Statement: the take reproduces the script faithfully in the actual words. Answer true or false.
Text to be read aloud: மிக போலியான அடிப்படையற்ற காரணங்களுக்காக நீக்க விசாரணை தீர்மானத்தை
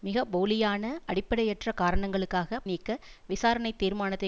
true